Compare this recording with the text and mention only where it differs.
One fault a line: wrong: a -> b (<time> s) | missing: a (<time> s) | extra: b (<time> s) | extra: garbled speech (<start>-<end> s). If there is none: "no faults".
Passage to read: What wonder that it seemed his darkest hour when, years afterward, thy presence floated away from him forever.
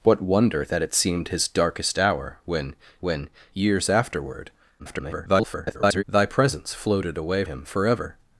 extra: when (3.0 s)
extra: garbled speech (4.8-6.0 s)
missing: from (7.4 s)